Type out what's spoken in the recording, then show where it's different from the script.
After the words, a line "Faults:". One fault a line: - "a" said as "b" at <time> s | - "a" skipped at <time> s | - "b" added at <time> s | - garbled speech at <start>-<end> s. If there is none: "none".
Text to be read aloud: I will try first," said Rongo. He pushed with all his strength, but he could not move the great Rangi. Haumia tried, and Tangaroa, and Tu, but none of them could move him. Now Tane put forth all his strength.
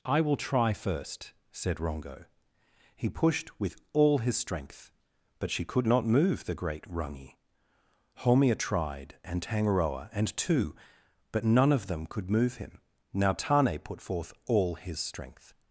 I will try first," said Rongo. He pushed with all his strength, but she could not move the great Rangi. Haumia tried, and Tangaroa, and Tu, but none of them could move him. Now Tane put forth all his strength.
Faults:
- "he" said as "she" at 5.5 s